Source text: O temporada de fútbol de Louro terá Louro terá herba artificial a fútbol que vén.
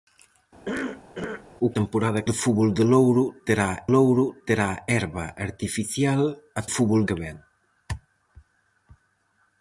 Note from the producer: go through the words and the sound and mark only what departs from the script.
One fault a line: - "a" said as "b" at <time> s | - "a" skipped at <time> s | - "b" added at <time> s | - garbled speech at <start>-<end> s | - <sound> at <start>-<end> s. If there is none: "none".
- cough at 0.7-1.5 s